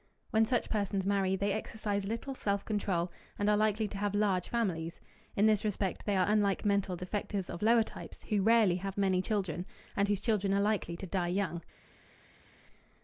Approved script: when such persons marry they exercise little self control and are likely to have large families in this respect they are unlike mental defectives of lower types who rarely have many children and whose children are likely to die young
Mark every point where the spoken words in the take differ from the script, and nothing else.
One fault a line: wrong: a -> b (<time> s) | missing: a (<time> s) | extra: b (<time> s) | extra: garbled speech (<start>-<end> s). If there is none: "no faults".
no faults